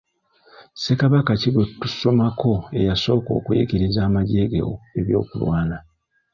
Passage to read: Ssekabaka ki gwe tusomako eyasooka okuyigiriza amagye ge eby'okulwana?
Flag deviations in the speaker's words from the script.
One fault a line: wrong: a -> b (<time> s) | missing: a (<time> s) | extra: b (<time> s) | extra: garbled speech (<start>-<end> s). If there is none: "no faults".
no faults